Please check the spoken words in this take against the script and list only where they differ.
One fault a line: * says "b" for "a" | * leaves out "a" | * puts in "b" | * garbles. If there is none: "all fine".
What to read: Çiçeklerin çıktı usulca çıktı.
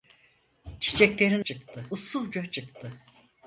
all fine